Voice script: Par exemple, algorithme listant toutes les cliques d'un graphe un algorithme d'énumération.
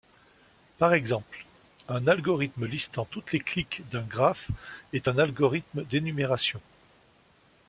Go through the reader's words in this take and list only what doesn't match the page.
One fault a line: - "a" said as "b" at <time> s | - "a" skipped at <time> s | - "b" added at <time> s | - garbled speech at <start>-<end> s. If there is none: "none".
- "un" added at 1.9 s
- "est" added at 4.9 s